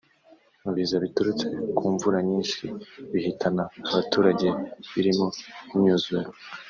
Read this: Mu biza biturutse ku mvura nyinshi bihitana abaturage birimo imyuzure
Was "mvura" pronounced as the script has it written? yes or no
yes